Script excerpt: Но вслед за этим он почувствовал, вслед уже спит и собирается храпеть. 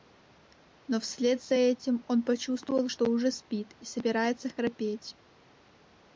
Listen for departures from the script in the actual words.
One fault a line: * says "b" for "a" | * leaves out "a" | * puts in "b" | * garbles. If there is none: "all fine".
* says "что" for "вслед"